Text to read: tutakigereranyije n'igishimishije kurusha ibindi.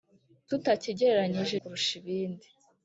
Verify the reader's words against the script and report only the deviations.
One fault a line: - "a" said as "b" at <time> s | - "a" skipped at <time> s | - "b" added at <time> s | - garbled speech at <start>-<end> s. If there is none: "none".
- "n'igishimishije" skipped at 1.6 s